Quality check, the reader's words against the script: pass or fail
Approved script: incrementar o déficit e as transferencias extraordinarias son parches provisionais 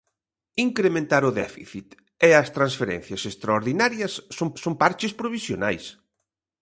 fail